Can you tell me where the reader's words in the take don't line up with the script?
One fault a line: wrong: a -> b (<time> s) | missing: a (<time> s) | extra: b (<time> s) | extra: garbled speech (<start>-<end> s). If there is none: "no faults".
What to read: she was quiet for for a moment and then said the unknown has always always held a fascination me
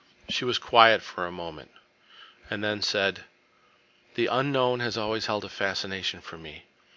missing: for (1.3 s)
missing: always (5.3 s)
extra: for (6.2 s)